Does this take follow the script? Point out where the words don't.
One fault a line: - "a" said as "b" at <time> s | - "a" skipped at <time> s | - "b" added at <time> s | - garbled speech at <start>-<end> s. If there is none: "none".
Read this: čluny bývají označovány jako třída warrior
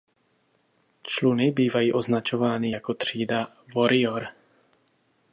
none